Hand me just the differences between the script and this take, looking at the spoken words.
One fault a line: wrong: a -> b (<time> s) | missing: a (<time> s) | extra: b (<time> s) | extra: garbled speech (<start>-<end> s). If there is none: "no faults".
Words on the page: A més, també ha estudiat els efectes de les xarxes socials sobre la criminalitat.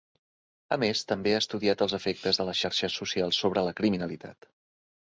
no faults